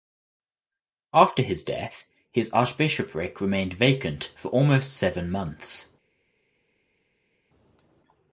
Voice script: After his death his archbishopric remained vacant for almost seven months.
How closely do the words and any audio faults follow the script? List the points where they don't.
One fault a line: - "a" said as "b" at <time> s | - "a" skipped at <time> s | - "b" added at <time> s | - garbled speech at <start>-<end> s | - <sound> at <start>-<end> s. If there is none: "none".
none